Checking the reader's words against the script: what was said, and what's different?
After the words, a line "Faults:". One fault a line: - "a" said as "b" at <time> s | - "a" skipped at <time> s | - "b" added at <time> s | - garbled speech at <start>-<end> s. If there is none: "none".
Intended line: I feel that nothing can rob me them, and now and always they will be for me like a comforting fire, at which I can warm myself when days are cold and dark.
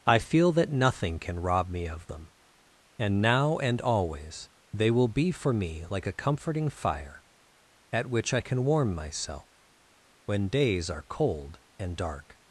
I feel that nothing can rob me of them, and now and always they will be for me like a comforting fire, at which I can warm myself when days are cold and dark.
Faults:
- "of" added at 1.9 s